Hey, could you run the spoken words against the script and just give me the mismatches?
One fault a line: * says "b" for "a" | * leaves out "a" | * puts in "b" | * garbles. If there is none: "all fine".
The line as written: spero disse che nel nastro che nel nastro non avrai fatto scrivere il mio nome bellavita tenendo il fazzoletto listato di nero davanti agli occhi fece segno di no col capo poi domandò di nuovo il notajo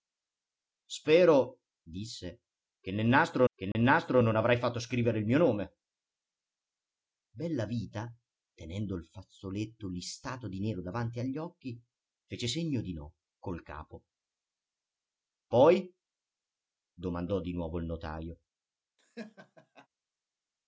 all fine